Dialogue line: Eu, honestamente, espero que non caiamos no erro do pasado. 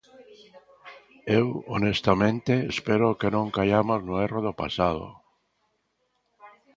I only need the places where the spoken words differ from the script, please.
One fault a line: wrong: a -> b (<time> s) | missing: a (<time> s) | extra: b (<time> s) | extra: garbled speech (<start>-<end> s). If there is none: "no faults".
no faults